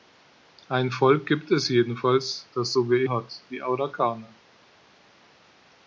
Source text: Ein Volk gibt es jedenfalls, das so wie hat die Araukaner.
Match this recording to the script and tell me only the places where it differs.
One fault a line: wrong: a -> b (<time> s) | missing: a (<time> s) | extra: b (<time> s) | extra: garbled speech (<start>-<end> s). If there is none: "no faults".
no faults